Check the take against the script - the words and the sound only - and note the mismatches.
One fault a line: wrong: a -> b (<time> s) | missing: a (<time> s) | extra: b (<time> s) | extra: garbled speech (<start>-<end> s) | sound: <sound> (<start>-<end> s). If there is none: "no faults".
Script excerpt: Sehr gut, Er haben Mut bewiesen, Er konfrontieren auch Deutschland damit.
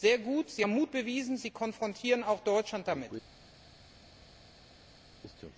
wrong: Er -> Sie (0.5 s)
wrong: Er -> Sie (1.4 s)